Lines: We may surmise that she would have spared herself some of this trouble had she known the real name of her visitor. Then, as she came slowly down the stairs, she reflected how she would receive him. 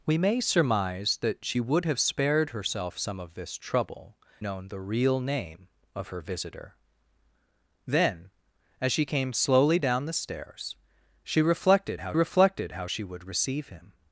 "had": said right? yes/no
no